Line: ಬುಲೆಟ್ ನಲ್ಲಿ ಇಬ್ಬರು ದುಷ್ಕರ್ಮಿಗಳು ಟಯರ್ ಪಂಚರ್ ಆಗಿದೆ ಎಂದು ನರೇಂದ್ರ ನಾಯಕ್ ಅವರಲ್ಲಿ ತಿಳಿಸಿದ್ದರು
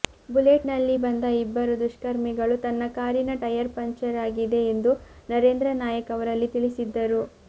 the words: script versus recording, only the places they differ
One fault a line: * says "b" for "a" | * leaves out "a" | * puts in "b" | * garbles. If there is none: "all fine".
* puts in "ಬಂದ"
* puts in "ತನ್ನ ಕಾರಿನ"